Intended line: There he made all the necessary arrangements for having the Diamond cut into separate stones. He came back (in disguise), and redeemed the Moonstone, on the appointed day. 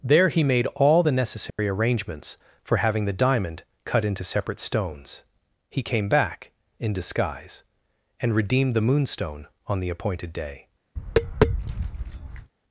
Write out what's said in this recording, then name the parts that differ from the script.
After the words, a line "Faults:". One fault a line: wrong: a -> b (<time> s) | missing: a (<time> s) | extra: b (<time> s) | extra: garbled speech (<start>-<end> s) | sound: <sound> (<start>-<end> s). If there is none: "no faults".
There he made all the necessary arrangements for having the Diamond cut into separate stones. He came back (in disguise), and redeemed the Moonstone, on the appointed day.
Faults:
sound: dropout (1.5-1.6 s)
sound: tap (11.0-12.5 s)